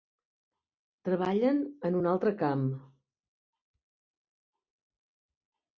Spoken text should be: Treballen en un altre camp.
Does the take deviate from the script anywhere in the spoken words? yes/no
no